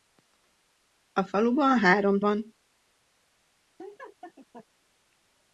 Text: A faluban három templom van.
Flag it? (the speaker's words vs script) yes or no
yes